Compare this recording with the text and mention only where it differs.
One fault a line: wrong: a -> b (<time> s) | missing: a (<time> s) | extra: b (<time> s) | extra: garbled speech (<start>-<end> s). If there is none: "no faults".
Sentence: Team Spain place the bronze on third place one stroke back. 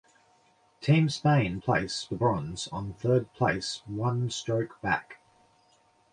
no faults